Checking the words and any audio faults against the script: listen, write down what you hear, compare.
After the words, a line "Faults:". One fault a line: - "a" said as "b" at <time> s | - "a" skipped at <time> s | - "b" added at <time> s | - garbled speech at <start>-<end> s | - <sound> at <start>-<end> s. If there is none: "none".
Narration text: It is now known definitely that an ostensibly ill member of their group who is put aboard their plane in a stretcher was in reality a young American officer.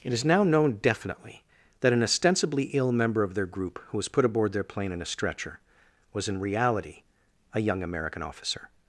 It is now known definitely that an ostensibly ill member of their group who was put aboard their plane in a stretcher was in reality a young American officer.
Faults:
- "is" said as "was" at 4.0 s